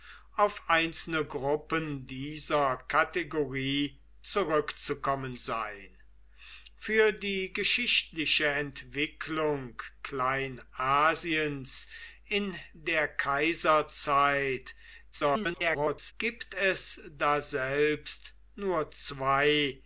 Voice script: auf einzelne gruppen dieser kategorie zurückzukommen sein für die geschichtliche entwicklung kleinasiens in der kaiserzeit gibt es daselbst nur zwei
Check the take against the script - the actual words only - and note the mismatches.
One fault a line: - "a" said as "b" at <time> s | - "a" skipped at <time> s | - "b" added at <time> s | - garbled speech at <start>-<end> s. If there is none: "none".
- garbled speech at 15.1-16.1 s